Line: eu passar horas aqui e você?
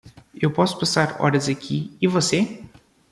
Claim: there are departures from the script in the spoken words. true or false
true